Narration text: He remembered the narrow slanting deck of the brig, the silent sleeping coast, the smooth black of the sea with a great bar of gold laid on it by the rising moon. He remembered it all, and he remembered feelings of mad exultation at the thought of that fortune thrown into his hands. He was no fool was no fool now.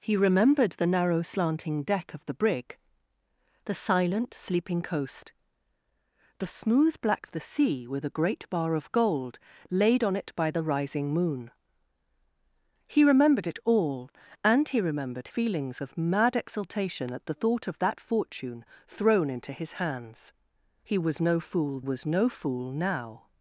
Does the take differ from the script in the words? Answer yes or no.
no